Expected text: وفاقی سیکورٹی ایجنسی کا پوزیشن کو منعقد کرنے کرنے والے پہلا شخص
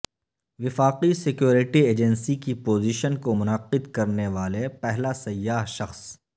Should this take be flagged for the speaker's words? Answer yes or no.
yes